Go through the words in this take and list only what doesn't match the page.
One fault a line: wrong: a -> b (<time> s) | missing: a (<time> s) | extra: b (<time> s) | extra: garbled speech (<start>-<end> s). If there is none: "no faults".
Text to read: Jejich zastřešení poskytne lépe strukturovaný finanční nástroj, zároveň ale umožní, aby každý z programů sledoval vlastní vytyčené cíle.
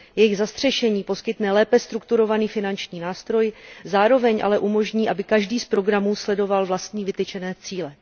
no faults